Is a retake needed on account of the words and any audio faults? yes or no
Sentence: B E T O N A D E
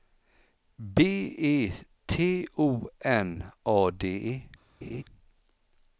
yes